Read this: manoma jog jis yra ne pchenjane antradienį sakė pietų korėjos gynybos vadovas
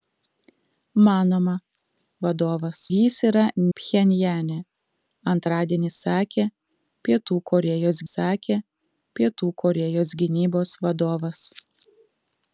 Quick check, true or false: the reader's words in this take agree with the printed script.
false